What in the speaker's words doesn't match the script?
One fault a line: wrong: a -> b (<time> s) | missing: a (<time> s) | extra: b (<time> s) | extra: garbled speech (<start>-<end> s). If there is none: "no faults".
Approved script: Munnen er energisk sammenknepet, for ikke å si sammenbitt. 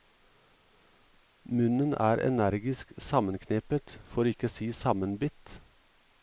no faults